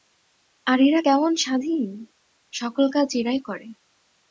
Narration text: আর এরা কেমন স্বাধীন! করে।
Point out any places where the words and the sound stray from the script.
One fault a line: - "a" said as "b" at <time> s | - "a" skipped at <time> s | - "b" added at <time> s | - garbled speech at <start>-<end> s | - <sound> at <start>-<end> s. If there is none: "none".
- "সকল কাজ এরাই" added at 2.5 s